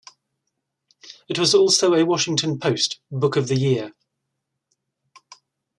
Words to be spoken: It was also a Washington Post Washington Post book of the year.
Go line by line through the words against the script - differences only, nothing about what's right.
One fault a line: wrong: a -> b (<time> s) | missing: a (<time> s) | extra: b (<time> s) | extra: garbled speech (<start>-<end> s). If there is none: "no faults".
missing: Washington Post (3.0 s)